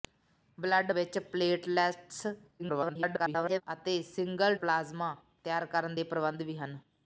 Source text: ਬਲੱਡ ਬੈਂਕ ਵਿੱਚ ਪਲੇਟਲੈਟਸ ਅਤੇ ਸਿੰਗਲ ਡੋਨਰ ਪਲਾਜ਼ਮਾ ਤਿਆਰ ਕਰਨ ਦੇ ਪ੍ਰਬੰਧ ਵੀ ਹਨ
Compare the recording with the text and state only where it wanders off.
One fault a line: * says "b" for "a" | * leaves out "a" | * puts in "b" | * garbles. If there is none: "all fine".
* leaves out "ਬੈਂਕ"
* garbles
* leaves out "ਡੋਨਰ"